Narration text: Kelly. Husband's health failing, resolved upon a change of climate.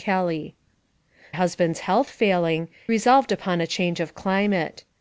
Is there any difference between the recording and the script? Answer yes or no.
no